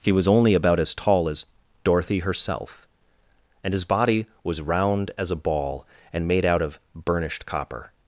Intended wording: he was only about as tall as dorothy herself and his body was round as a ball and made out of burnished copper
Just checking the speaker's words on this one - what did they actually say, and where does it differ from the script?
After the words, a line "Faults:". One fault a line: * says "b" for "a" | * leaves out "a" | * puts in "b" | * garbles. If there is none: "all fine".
he was only about as tall as dorothy herself and his body was round as a ball and made out of burnished copper
Faults:
all fine